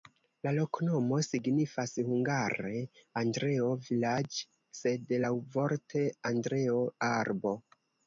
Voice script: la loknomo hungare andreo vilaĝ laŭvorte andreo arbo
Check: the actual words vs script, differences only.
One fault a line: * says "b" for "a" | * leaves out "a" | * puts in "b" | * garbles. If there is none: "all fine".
* puts in "signifas"
* puts in "sed"